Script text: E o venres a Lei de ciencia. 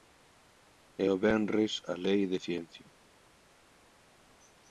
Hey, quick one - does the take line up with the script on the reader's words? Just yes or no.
yes